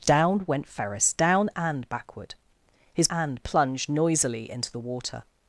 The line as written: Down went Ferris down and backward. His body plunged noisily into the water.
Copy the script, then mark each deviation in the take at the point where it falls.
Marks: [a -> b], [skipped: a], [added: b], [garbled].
Down went Ferris down and backward. His [body -> and] plunged noisily into the water.